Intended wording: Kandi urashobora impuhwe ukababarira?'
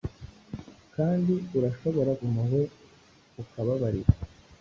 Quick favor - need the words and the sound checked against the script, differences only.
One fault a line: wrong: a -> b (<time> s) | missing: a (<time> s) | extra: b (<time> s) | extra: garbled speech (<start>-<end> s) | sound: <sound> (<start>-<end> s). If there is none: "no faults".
no faults